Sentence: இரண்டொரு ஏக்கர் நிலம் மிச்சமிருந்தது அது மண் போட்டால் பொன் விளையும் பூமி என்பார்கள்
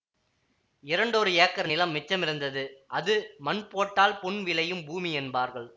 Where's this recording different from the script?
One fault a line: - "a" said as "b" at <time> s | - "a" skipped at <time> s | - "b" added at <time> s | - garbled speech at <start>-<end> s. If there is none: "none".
none